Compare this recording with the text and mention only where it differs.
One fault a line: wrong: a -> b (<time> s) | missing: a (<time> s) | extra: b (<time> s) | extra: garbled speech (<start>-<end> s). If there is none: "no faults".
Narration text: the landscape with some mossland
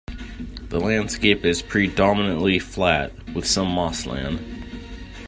extra: is predominantly flat (1.4 s)